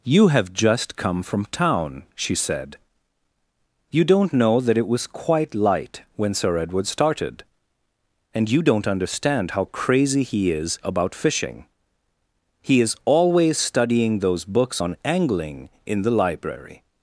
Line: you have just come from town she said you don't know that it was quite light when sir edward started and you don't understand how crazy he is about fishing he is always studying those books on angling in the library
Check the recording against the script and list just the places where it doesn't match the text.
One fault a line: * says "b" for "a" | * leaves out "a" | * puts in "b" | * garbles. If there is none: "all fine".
all fine